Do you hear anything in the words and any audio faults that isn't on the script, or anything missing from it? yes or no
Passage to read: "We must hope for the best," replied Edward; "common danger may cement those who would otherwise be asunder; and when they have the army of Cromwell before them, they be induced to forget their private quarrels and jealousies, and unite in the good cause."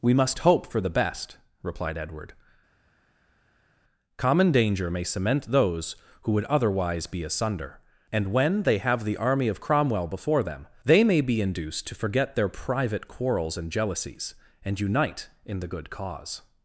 yes